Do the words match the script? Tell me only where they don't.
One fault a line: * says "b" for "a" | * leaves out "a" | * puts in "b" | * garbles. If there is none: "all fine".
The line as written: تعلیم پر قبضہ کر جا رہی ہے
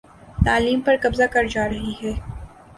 all fine